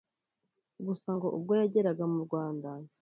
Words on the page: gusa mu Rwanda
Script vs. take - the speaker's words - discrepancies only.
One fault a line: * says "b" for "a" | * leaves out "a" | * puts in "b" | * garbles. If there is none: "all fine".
* puts in "ngo ubwo yageraga"